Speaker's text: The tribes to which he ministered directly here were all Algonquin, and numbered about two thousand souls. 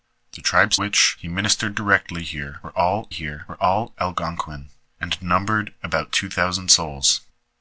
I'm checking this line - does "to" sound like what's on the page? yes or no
no